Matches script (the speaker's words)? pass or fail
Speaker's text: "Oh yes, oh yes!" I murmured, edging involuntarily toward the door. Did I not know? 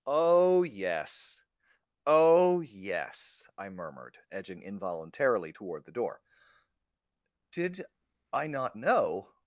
pass